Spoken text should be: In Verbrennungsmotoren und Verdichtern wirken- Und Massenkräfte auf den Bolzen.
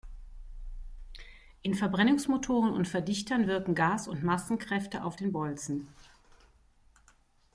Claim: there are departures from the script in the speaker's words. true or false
true